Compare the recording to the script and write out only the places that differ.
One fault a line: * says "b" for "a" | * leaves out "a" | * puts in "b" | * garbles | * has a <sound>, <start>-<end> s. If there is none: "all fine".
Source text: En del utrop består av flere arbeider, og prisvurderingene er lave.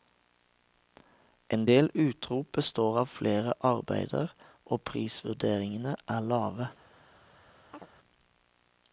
* has a chirp, 7.7-7.9 s